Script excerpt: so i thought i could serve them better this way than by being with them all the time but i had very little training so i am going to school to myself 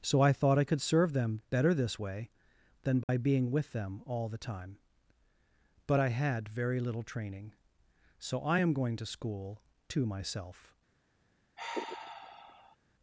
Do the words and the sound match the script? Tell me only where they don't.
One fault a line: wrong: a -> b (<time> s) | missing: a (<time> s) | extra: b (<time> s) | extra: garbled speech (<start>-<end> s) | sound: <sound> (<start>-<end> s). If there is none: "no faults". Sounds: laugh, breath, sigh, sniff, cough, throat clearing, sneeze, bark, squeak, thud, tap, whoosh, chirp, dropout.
sound: dropout (3.0-3.1 s)
sound: sigh (11.6-12.8 s)